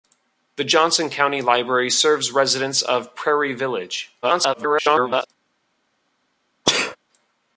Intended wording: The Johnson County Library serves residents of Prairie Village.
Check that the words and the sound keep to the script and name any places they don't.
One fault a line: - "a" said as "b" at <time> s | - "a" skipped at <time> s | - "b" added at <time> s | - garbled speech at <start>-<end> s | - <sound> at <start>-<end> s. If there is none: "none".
- garbled speech at 4.2-5.3 s
- sneeze at 6.6-7.0 s